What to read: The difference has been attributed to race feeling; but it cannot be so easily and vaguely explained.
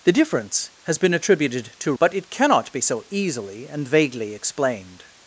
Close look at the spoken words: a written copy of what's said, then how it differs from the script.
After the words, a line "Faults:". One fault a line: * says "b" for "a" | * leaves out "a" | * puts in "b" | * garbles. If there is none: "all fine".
The difference has been attributed to; but it cannot be so easily and vaguely explained.
Faults:
* leaves out "race feeling"